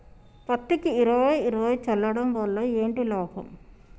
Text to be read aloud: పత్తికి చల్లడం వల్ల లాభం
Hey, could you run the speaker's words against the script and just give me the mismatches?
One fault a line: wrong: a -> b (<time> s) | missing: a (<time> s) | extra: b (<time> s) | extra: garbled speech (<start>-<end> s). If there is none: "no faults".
extra: ఇరవై ఇరవై (0.9 s)
extra: ఏంటి (2.6 s)